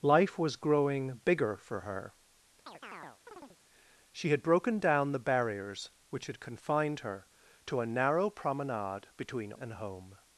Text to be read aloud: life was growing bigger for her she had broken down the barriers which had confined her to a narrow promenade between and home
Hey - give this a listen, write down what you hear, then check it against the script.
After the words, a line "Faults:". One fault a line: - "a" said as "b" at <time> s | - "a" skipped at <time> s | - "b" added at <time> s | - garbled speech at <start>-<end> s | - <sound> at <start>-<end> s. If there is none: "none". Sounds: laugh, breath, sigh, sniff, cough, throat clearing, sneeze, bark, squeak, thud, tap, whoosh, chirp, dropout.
life was growing bigger for her she had broken down the barriers which had confined her to a narrow promenade between and home
Faults:
- chirp at 2.7-3.6 s